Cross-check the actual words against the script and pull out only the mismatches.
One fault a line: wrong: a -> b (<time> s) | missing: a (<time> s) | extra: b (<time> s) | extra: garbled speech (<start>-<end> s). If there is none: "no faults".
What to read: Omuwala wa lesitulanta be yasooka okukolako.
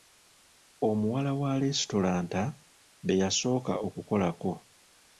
no faults